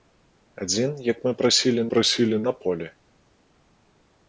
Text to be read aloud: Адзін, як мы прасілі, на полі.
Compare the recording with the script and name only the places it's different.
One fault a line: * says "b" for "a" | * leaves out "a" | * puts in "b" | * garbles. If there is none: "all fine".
* puts in "прасілі"